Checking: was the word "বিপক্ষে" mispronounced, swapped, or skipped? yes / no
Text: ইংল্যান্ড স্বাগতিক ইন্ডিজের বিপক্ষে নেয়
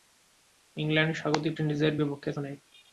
no